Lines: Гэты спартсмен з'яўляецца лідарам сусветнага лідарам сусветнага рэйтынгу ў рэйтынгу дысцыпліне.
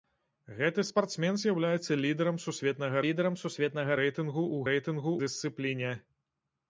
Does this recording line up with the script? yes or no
yes